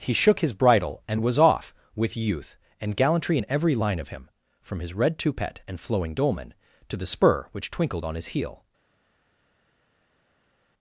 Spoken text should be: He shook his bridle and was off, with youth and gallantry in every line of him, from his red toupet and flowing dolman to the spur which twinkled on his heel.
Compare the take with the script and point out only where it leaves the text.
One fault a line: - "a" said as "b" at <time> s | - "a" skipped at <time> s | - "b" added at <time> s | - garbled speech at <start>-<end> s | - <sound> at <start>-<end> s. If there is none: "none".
none